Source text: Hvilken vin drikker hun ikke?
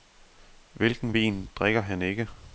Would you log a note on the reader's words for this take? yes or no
yes